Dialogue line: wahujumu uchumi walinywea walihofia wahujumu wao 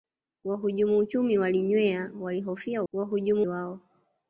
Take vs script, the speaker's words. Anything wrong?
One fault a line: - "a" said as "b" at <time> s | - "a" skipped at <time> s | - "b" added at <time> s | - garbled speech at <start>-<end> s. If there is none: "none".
none